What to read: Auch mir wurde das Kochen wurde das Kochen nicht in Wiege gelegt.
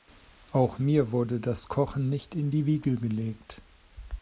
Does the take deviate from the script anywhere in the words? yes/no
yes